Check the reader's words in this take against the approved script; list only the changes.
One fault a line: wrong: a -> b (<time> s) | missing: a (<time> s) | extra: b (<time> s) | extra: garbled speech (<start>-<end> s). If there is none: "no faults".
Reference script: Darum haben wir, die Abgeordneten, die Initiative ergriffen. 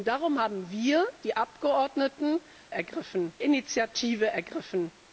wrong: die -> ergriffen (2.7 s)